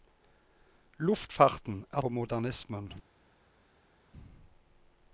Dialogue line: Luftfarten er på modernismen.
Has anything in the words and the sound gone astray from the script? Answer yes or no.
no